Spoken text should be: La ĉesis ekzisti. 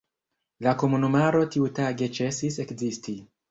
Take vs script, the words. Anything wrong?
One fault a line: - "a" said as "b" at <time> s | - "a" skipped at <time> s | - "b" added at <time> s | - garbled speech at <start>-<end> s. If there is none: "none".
- "komunumaro tiutage" added at 0.8 s